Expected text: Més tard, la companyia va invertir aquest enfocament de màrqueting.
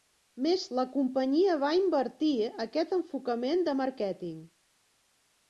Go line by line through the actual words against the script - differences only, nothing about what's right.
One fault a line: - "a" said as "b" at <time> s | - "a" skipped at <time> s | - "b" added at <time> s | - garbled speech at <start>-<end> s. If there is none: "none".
- "tard" skipped at 0.6 s